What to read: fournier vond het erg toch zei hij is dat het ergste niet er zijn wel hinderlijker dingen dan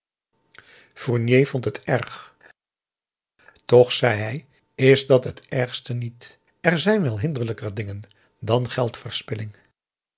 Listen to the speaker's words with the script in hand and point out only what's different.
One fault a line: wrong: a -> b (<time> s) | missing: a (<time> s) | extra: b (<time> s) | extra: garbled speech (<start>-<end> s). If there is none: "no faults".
no faults